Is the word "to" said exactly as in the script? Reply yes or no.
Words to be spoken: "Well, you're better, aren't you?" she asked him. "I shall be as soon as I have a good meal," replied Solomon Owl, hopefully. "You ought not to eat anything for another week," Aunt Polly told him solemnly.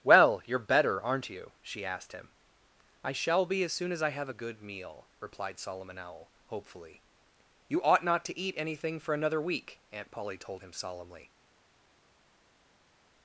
yes